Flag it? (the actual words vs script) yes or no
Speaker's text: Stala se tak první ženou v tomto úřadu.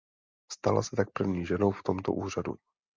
no